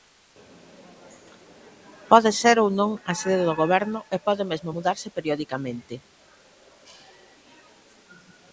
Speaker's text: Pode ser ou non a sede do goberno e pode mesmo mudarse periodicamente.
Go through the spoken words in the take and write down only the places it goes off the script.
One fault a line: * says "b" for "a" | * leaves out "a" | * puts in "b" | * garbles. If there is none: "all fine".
all fine